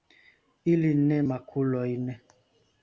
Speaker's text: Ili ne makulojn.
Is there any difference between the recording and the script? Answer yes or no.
no